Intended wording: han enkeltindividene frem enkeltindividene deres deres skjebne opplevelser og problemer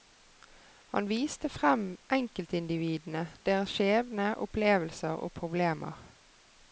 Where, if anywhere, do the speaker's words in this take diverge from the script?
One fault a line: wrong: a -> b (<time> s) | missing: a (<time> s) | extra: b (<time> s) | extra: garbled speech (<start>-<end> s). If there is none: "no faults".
wrong: enkeltindividene -> viste (1.1 s)
missing: deres (3.8 s)